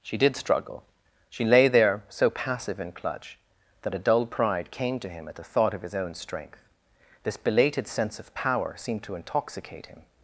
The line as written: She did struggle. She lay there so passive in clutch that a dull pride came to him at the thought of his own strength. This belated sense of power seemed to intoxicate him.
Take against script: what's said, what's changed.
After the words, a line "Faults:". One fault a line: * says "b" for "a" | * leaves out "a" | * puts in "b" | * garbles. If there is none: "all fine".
She did struggle. She lay there so passive in clutch that a dull pride came to him at the thought of his own strength. This belated sense of power seemed to intoxicate him.
Faults:
all fine